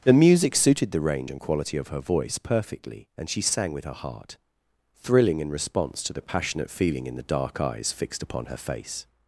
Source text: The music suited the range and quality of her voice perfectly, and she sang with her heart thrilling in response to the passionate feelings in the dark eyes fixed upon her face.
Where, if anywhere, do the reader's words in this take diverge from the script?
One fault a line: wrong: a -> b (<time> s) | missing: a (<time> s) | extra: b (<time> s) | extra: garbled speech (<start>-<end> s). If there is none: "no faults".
wrong: feelings -> feeling (6.7 s)